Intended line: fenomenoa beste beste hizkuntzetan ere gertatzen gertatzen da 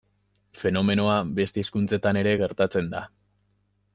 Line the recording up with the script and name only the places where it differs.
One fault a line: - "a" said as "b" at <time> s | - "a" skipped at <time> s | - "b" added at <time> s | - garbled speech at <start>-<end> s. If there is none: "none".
- "beste" skipped at 1.6 s
- "gertatzen" skipped at 2.9 s